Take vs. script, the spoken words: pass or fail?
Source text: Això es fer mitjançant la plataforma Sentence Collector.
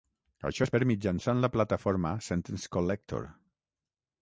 pass